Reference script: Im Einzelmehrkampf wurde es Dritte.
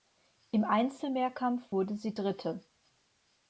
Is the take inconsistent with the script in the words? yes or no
yes